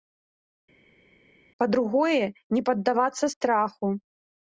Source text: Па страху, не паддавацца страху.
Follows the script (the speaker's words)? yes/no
no